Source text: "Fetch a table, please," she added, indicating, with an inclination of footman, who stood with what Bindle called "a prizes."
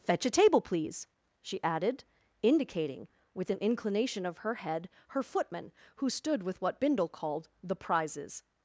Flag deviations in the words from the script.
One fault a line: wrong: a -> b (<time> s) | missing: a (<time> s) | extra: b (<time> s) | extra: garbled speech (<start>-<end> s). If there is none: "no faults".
extra: her head her (4.4 s)
wrong: a -> the (7.6 s)